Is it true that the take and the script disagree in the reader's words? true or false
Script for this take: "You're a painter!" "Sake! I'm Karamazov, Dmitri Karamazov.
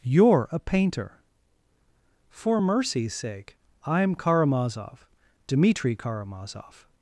true